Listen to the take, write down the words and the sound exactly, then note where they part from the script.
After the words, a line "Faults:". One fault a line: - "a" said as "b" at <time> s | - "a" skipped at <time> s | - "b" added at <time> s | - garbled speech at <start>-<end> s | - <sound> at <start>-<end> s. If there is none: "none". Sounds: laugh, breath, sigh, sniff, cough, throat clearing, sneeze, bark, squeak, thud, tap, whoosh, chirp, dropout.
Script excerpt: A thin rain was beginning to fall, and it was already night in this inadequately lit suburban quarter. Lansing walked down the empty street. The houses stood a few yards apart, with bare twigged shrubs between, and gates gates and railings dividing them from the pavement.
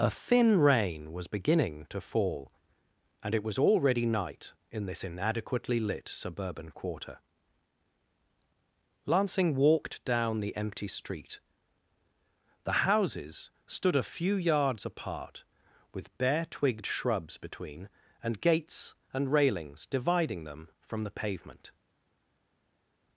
A thin rain was beginning to fall, and it was already night in this inadequately lit suburban quarter. Lansing walked down the empty street. The houses stood a few yards apart, with bare twigged shrubs between, and gates and railings dividing them from the pavement.
Faults:
- "gates" skipped at 18.9 s